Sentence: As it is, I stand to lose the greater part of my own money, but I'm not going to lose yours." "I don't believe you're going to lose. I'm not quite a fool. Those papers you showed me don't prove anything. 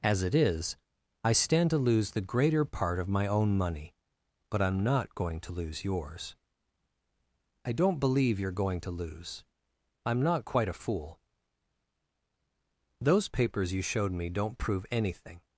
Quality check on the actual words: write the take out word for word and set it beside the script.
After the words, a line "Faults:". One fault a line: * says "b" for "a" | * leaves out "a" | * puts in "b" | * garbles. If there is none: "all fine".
As it is, I stand to lose the greater part of my own money, but I'm not going to lose yours." "I don't believe you're going to lose. I'm not quite a fool. Those papers you showed me don't prove anything.
Faults:
all fine